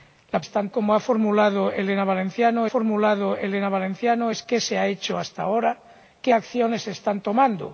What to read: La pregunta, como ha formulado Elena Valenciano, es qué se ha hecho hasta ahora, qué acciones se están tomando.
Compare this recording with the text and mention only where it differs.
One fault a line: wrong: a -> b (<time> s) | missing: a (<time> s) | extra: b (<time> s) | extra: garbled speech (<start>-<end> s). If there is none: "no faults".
wrong: pregunta -> están (0.4 s)
extra: formulado Elena Valenciano (2.7 s)